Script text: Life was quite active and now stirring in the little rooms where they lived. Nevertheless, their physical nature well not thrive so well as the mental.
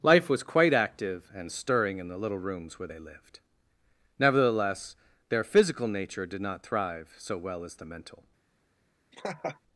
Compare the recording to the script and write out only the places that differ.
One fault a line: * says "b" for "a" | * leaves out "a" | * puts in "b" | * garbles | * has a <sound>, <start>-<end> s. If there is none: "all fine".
* leaves out "now"
* says "did" for "well"
* has a laugh, 9.1-9.6 s